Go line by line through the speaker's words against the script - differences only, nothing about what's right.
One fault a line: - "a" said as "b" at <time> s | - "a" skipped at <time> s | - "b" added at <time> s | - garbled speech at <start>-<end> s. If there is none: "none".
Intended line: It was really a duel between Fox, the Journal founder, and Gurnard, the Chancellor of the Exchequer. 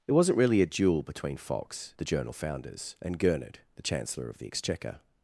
- "was" said as "wasn't" at 0.1 s
- "founder" said as "founders" at 2.3 s